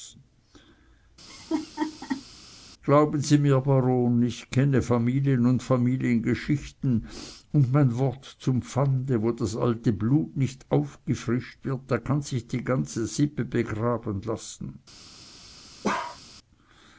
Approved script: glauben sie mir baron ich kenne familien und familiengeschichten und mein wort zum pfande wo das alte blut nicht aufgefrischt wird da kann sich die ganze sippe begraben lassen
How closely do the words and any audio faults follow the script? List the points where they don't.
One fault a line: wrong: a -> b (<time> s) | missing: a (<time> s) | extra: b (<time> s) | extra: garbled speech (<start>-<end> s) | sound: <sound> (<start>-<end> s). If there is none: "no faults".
sound: laugh (1.3-2.2 s)
sound: bark (15.8-16.2 s)